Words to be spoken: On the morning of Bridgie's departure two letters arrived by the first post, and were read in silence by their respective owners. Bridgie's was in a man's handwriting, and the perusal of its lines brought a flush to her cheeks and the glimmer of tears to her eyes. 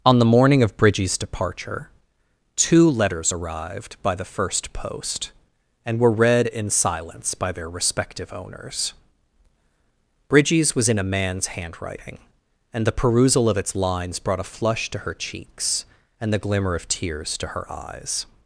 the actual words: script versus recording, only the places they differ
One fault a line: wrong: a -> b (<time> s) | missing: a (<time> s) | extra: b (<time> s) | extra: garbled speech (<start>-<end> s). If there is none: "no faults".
no faults